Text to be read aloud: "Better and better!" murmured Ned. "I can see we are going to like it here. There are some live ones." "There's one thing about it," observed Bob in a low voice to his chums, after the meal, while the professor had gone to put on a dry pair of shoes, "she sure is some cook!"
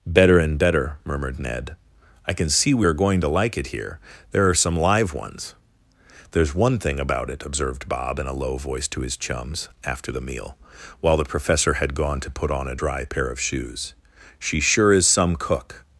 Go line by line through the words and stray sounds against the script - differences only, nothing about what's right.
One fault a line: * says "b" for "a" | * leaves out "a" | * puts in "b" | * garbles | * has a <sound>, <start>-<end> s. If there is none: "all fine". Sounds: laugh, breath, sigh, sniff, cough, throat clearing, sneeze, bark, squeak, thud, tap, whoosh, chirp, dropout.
all fine